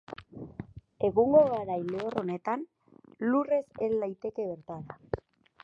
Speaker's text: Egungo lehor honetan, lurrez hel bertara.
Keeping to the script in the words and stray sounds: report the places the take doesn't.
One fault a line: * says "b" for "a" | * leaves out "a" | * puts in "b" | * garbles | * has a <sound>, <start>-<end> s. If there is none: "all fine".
* puts in "garai"
* puts in "daiteke"